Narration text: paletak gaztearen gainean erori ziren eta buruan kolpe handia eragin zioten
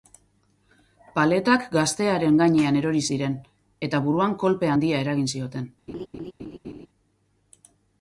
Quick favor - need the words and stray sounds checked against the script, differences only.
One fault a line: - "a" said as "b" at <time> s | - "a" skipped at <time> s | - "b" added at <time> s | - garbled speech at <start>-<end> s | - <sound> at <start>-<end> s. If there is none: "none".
- laugh at 5.9-6.9 s